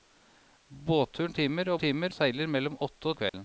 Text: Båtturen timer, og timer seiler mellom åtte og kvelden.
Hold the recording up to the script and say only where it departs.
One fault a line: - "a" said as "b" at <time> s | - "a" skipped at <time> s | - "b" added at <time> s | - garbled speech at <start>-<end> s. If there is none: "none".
none